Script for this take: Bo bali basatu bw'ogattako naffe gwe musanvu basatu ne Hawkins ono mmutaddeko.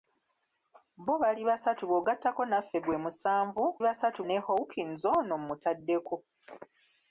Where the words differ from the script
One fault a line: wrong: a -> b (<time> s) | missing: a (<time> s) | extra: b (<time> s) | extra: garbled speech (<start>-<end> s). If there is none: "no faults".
no faults